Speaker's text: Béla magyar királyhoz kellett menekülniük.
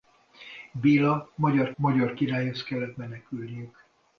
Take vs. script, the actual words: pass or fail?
fail